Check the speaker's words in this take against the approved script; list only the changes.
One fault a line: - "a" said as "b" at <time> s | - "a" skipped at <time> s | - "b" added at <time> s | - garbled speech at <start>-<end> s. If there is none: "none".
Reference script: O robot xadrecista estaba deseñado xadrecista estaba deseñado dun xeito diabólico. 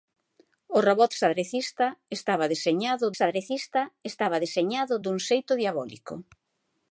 none